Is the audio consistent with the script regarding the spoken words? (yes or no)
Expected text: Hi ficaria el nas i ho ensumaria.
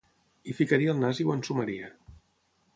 yes